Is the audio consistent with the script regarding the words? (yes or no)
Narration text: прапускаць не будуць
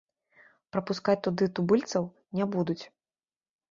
no